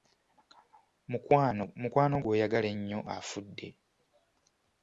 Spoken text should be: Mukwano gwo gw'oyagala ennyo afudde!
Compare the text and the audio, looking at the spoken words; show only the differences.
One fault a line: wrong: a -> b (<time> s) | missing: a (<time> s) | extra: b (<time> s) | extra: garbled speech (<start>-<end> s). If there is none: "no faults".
missing: gwo (2.1 s)